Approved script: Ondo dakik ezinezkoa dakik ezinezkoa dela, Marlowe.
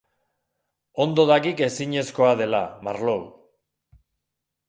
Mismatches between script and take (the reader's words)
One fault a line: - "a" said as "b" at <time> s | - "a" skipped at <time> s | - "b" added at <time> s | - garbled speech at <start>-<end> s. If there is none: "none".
- "dakik ezinezkoa" skipped at 2.3 s